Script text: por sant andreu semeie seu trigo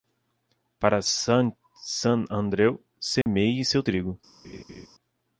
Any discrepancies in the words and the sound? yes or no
yes